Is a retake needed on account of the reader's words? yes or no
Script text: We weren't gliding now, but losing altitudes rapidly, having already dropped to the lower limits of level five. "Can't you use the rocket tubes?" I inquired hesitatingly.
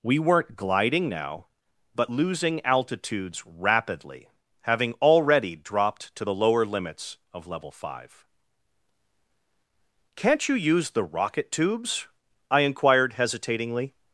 no